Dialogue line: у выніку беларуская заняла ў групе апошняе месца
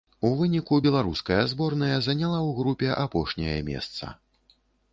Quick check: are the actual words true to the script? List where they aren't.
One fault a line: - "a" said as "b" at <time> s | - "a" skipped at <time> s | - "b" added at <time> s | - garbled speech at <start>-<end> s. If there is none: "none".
- "зборная" added at 1.5 s